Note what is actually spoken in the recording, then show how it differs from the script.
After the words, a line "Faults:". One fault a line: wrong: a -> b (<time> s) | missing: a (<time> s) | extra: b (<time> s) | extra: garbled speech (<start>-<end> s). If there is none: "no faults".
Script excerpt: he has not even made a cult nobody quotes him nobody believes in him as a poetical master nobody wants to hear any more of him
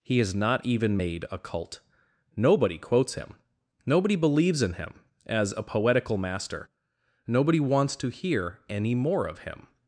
he has not even made a cult nobody quotes him nobody believes in him as a poetical master nobody wants to hear any more of him
Faults:
no faults